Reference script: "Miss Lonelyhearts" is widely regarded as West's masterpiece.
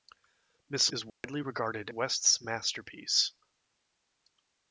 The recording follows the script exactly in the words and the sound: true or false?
false